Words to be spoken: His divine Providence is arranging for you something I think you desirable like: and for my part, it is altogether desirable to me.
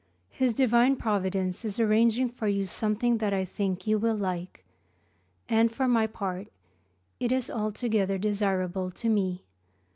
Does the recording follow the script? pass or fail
fail